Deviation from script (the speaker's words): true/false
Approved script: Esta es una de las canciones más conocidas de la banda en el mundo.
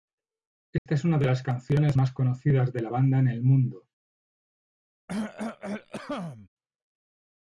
false